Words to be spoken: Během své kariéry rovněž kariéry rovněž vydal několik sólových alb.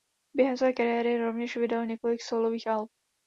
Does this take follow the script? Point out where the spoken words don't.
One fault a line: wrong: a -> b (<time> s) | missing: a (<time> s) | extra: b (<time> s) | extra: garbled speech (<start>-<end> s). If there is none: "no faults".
missing: kariéry rovněž (1.6 s)